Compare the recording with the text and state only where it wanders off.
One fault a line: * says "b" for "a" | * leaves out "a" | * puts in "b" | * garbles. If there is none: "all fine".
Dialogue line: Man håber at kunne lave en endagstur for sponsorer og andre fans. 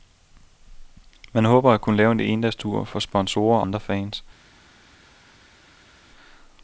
* leaves out "og"